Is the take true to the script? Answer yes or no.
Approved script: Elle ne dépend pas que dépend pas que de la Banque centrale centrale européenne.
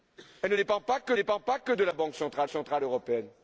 yes